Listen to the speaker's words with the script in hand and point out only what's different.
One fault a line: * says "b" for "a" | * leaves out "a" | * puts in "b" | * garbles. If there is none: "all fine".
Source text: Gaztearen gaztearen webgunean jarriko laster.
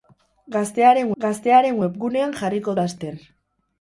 all fine